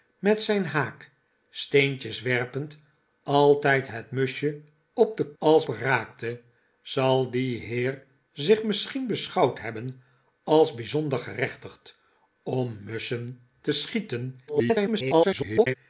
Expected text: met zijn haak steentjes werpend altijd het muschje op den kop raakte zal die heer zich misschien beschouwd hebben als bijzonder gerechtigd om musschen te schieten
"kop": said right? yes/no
no